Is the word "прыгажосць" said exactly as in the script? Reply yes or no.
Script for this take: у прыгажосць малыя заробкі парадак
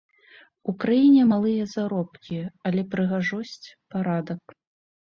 no